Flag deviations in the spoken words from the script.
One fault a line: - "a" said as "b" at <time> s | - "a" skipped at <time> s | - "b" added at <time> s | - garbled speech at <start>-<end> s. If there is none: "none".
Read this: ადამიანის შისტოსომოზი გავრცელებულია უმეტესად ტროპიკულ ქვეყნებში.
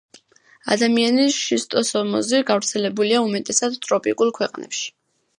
none